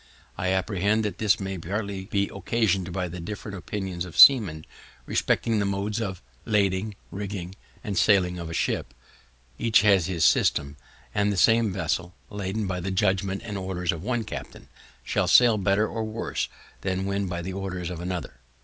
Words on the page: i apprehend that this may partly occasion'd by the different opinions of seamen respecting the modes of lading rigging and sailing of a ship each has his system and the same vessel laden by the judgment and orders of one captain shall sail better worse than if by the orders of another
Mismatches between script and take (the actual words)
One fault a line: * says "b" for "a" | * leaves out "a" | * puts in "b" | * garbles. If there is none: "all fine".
* puts in "be"
* puts in "or"
* says "when" for "if"